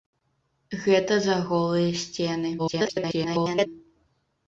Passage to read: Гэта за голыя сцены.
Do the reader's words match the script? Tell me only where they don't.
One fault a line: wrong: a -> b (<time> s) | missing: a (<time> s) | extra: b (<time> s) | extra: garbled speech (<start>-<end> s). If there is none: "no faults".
extra: garbled speech (2.6-3.7 s)